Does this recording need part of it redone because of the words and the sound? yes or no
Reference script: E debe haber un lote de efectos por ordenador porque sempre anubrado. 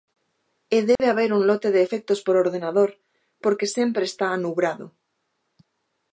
yes